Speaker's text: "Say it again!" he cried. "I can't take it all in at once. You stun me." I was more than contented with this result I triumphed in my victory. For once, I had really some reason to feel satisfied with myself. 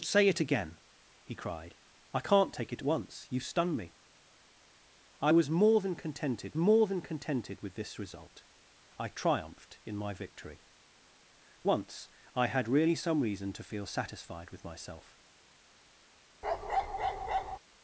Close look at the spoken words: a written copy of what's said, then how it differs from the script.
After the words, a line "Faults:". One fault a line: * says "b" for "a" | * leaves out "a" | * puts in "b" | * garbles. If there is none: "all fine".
"Say it again!" he cried. "I can't take it once. You stun me." I was more than contented more than contented with this result I triumphed in my victory. Once, I had really some reason to feel satisfied with myself.
Faults:
* leaves out "all in at"
* puts in "more than contented"
* leaves out "For"